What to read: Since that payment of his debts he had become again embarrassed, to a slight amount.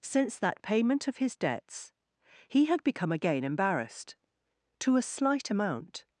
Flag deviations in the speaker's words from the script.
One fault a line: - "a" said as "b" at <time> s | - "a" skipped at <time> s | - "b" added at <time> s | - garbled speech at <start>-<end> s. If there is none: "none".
none